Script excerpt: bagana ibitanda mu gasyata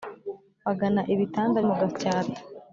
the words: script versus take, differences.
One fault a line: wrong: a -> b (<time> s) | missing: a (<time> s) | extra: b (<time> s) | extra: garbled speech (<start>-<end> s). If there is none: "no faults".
no faults